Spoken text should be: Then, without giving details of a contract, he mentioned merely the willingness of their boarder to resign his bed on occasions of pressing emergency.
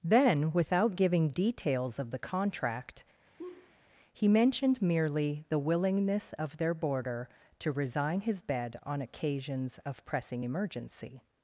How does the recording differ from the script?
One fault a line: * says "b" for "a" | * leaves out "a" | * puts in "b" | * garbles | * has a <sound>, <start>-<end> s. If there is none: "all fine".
* says "the" for "a"
* has a laugh, 3.4-3.7 s